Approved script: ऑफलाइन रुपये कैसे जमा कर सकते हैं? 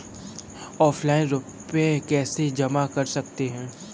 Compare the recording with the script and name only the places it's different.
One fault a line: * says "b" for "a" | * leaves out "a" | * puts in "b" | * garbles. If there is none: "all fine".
all fine